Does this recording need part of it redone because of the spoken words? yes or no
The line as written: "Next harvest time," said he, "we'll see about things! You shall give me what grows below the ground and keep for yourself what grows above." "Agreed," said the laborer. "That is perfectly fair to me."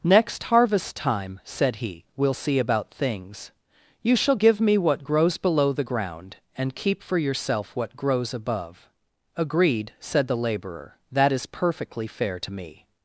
no